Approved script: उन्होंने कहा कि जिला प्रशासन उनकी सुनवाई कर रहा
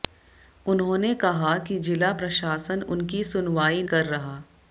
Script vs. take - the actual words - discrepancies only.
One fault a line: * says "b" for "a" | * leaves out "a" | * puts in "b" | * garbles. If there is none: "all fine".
all fine